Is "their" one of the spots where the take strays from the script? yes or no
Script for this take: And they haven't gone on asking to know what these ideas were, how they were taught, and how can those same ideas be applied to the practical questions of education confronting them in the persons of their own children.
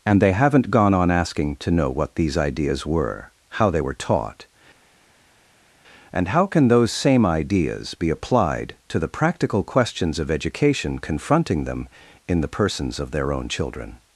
no